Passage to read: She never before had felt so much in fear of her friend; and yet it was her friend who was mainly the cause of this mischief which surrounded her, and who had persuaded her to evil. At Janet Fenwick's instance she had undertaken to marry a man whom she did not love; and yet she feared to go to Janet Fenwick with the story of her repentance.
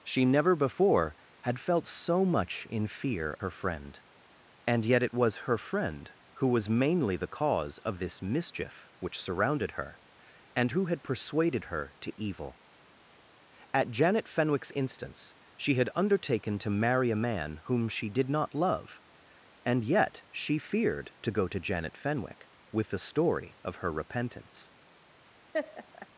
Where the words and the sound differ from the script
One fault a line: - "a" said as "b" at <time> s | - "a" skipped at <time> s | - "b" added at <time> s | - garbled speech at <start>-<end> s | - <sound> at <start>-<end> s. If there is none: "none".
- "of" skipped at 3.4 s
- laugh at 25.5-26.1 s